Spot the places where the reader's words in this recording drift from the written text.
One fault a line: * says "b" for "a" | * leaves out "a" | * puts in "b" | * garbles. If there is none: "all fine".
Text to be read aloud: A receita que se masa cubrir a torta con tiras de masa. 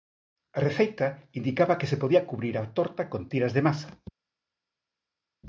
* puts in "indicaba"
* says "podía" for "masa"